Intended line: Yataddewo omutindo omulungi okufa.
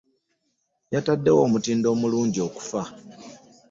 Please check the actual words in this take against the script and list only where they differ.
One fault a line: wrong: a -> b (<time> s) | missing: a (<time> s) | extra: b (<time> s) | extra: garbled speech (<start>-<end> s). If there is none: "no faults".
no faults